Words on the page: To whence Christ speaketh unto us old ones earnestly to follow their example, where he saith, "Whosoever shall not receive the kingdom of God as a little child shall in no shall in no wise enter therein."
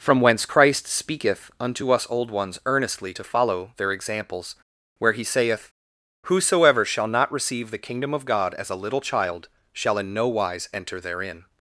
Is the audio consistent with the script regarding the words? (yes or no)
no